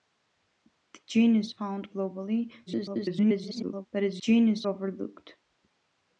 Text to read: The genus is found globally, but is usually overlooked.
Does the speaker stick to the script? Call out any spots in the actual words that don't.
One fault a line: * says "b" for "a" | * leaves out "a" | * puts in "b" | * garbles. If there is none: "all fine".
* leaves out "is"
* garbles
* says "genus" for "usually"